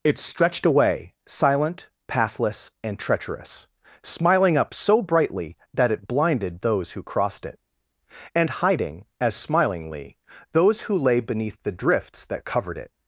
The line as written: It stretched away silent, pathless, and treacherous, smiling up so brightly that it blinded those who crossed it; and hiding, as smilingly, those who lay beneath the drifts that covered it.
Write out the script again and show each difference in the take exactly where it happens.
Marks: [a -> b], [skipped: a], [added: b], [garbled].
It stretched away silent, pathless, and treacherous, smiling up so brightly that it blinded those who crossed it; and hiding, as smilingly, those who lay beneath the drifts that covered it.